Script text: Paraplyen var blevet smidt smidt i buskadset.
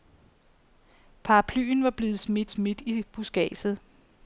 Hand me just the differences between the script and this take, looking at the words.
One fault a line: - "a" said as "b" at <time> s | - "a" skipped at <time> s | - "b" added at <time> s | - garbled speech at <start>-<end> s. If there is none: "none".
none